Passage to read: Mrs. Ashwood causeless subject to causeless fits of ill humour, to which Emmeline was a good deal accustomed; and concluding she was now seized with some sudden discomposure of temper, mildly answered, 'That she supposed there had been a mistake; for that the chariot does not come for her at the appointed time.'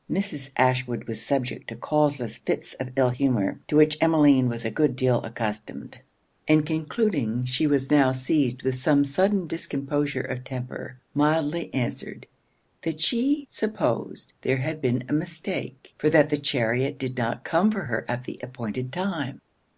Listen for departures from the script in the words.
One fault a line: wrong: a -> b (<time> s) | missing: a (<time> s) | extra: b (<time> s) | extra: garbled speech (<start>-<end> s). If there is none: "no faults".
wrong: causeless -> was (1.1 s)
wrong: does -> did (17.0 s)